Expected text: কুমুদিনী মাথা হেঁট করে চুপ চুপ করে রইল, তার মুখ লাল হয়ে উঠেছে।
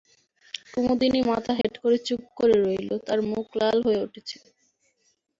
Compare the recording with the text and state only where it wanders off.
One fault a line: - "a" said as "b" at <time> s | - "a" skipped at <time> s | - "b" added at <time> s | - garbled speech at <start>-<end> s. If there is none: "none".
- "চুপ" skipped at 2.2 s